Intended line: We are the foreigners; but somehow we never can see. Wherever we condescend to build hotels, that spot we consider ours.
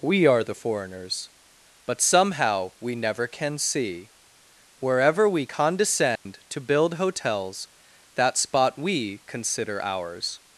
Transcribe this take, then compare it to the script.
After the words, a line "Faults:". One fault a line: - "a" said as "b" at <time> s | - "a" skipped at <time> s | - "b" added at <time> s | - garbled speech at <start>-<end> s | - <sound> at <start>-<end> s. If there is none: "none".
We are the foreigners; but somehow we never can see. Wherever we condescend to build hotels, that spot we consider ours.
Faults:
- dropout at 6.2-6.3 s